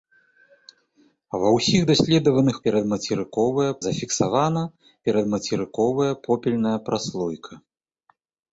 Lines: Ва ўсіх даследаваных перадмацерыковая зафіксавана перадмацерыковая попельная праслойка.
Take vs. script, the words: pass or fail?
pass